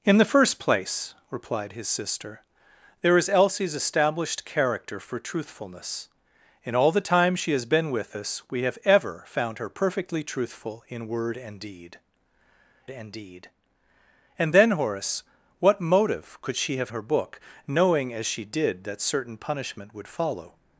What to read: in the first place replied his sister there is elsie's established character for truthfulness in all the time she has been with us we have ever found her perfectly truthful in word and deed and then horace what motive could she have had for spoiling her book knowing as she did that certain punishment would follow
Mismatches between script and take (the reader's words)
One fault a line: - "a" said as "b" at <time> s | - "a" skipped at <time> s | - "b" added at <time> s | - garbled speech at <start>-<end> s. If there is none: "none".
- "deed and" added at 13.1 s
- "had for spoiling" skipped at 16.9 s